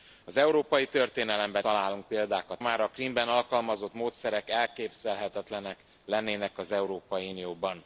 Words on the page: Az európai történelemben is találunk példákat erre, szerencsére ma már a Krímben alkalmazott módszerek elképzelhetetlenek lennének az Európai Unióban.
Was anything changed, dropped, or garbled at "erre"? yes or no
yes